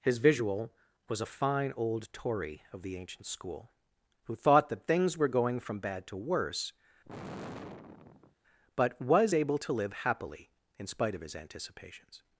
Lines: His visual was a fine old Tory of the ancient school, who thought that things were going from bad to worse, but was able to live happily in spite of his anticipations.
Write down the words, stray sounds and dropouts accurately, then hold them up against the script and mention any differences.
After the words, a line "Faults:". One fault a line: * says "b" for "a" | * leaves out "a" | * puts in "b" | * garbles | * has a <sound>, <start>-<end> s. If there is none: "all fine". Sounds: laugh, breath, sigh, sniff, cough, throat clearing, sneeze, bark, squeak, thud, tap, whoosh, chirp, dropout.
His visual was a fine old Tory of the ancient school, who thought that things were going from bad to worse, but was able to live happily in spite of his anticipations.
Faults:
* has a sigh, 7.0-8.4 s